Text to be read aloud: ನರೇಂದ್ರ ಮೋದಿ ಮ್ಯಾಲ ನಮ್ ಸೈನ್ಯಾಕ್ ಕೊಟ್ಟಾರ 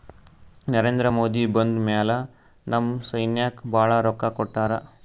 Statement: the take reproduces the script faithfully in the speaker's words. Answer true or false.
false